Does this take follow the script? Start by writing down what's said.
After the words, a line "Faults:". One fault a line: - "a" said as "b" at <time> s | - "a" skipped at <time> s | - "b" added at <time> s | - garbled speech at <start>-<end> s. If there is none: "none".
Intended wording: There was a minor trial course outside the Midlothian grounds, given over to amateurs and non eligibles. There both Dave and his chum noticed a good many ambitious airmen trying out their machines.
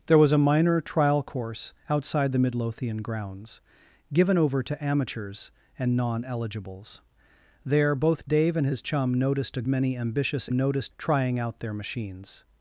There was a minor trial course outside the Midlothian grounds, given over to amateurs and non eligibles. There both Dave and his chum noticed a many ambitious noticed trying out their machines.
Faults:
- "good" skipped at 9.6 s
- "airmen" said as "noticed" at 10.5 s